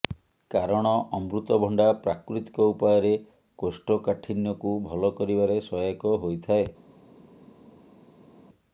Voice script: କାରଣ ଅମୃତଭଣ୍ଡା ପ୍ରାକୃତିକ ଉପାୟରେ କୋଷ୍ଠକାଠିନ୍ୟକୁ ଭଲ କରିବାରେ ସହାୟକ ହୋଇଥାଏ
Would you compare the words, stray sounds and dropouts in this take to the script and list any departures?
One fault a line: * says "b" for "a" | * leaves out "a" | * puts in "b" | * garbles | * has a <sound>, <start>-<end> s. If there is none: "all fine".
all fine